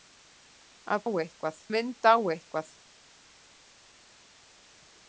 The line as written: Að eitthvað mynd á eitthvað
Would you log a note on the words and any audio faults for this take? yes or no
no